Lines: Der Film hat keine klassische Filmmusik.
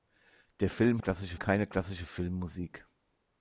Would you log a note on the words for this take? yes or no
yes